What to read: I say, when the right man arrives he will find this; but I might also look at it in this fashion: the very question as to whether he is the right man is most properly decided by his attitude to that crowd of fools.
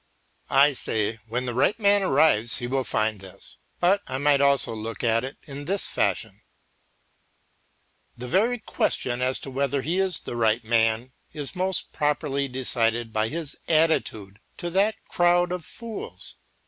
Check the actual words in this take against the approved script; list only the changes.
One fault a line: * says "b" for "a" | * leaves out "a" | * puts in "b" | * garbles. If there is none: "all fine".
all fine